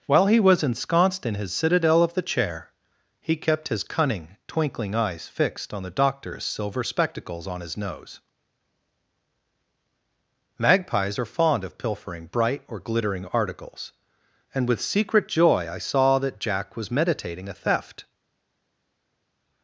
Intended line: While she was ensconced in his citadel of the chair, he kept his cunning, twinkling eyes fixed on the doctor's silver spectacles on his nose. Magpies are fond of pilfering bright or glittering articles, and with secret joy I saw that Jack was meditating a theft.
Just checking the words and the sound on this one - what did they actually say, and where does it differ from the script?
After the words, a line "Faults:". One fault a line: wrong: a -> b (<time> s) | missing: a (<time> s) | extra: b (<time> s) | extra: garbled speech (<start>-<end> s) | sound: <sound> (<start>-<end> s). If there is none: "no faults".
While he was ensconced in his citadel of the chair, he kept his cunning, twinkling eyes fixed on the doctor's silver spectacles on his nose. Magpies are fond of pilfering bright or glittering articles, and with secret joy I saw that Jack was meditating a theft.
Faults:
wrong: she -> he (0.3 s)